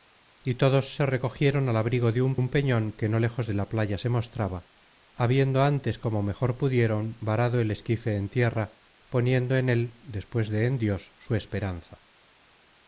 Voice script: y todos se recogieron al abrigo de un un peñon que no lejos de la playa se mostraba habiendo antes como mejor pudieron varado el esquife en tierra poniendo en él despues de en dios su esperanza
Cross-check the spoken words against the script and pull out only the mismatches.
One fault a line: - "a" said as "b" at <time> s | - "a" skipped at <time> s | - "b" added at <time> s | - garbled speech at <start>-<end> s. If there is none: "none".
none